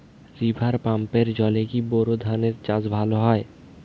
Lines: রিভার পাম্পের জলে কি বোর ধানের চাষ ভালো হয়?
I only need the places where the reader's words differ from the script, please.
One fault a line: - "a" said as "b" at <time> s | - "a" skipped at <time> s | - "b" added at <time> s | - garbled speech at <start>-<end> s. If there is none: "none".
none